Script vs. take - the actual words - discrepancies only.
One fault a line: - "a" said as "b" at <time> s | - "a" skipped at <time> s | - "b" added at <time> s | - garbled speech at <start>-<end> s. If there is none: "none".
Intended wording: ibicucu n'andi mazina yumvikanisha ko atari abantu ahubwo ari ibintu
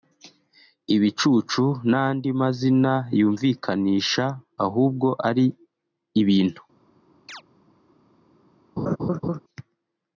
- "ko atari abantu" skipped at 4.2 s